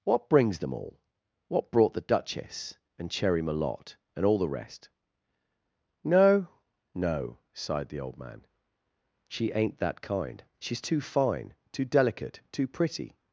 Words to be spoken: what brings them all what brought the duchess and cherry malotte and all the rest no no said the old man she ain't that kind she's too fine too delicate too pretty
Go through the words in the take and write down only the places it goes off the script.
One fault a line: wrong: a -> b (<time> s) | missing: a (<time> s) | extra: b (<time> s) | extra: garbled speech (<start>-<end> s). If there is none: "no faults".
wrong: said -> sighed (7.5 s)